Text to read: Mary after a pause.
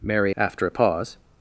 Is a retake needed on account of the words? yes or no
no